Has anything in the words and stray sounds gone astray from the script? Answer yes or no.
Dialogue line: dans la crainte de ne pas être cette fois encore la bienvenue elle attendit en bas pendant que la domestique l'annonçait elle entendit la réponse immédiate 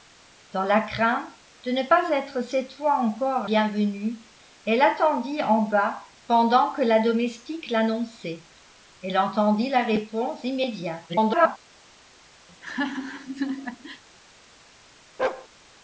yes